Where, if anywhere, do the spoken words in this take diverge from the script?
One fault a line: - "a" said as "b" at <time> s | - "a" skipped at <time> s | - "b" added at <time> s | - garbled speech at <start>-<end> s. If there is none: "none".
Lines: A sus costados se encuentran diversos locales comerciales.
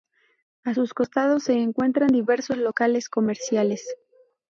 none